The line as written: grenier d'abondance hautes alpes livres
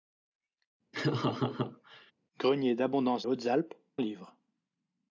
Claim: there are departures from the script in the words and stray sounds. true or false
true